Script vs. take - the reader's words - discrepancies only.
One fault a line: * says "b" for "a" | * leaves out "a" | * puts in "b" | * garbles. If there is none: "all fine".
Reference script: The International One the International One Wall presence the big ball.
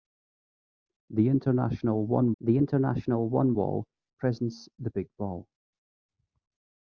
all fine